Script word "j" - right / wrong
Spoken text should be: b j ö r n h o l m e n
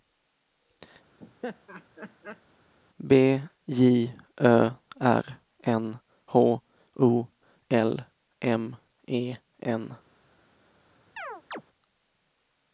right